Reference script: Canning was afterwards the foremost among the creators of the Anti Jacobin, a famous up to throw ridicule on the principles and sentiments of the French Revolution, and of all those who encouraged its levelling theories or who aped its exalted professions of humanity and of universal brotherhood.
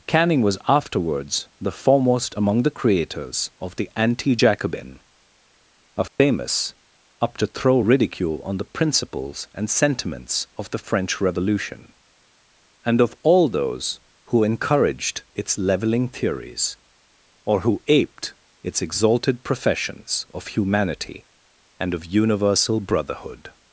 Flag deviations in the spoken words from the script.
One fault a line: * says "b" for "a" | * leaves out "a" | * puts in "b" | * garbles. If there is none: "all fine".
all fine